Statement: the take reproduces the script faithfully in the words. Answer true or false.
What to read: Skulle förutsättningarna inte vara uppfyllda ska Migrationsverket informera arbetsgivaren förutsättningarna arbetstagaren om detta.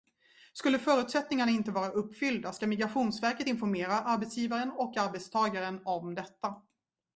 false